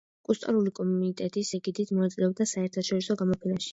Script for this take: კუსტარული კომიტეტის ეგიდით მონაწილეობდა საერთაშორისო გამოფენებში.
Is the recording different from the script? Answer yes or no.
no